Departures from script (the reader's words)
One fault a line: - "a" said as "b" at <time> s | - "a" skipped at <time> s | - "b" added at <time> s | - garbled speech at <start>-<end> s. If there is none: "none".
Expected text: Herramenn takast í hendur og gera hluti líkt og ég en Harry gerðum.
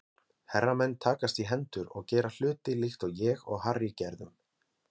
- "en" said as "og" at 3.5 s